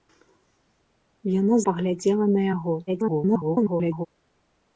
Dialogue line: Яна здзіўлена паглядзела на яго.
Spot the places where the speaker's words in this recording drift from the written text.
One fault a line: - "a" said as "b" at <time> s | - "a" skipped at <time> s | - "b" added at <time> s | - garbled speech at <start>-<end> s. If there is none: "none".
- "здзіўлена" skipped at 1.6 s
- garbled speech at 2.9-4.1 s